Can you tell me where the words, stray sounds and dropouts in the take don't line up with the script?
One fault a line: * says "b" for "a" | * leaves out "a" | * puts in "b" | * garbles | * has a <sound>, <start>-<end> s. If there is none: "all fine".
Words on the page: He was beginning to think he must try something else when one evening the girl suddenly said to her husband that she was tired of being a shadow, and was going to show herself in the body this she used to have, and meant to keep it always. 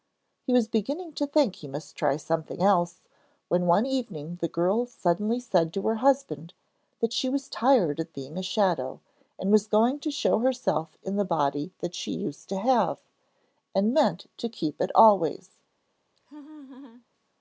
* says "that" for "this"
* has a laugh, 16.2-17.1 s